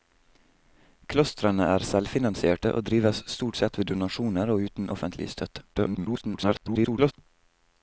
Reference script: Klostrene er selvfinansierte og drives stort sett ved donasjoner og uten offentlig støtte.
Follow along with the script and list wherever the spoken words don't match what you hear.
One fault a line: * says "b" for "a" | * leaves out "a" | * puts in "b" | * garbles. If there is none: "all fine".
* garbles